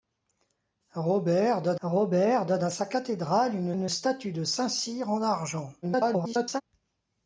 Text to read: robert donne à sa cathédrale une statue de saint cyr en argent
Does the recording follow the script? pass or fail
fail